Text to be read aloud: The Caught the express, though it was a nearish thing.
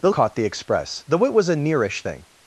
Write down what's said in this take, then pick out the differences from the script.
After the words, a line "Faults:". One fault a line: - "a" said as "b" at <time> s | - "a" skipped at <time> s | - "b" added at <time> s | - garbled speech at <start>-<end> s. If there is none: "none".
The Caught the express, though it was a nearish thing.
Faults:
none